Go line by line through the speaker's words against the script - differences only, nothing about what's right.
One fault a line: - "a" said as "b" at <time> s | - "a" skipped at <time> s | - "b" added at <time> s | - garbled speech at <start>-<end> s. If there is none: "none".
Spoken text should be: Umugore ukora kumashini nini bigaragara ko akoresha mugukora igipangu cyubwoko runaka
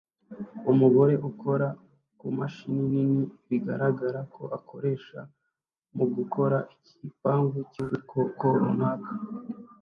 none